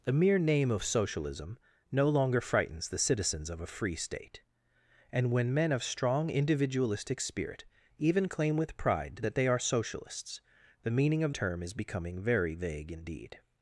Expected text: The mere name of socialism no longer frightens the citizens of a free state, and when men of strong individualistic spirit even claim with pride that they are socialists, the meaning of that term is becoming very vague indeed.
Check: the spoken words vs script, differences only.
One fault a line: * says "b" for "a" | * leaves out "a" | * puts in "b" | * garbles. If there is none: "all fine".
* leaves out "that"